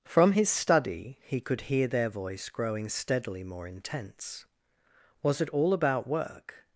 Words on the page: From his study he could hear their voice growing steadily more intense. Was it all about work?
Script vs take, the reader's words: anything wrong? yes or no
no